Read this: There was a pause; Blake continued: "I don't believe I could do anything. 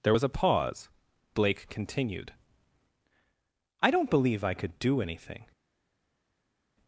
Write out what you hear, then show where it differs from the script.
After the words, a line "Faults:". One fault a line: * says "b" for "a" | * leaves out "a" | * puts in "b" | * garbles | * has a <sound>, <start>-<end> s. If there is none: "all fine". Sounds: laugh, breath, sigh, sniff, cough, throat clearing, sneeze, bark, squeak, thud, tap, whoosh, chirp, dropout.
There was a pause; Blake continued: "I don't believe I could do anything.
Faults:
all fine